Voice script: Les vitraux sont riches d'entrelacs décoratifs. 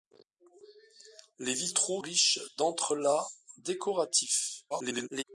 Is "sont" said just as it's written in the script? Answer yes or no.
no